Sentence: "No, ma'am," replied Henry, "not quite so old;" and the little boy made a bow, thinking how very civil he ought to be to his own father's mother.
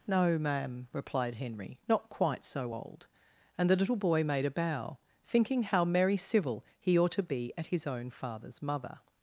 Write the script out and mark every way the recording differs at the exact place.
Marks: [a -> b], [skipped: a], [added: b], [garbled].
"No, ma'am," replied Henry, "not quite so old;" and the little boy made a bow, thinking how [very -> merry] civil he ought to be [to -> at] his own father's mother.